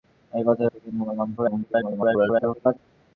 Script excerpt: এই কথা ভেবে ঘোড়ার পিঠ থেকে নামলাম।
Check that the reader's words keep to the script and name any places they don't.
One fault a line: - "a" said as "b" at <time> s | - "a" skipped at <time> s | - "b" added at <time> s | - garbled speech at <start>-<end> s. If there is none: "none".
- "ভেবে ঘোড়ার পিঠ" skipped at 0.6 s
- garbled speech at 1.4-2.8 s